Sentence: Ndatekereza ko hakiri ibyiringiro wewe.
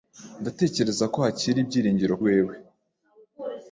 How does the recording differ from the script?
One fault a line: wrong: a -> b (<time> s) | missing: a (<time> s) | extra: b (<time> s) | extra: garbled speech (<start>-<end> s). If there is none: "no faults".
no faults